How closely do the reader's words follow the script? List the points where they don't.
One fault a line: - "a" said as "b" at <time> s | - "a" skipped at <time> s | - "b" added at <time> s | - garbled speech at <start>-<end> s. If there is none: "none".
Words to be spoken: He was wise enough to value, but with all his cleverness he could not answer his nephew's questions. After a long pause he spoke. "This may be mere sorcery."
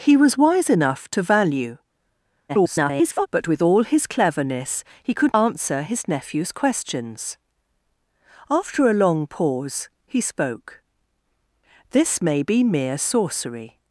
- garbled speech at 2.5-3.3 s
- "not" skipped at 5.3 s